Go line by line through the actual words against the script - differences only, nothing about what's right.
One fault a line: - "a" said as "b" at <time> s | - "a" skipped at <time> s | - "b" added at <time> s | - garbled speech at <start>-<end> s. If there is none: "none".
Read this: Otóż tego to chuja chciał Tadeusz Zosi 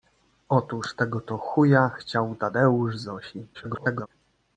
- garbled speech at 3.5-4.1 s